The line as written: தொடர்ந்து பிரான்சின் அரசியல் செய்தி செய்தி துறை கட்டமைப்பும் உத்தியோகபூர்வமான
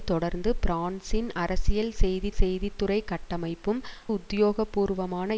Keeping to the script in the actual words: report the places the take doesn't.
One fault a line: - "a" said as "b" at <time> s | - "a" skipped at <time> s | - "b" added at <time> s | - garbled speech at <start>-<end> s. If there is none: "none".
none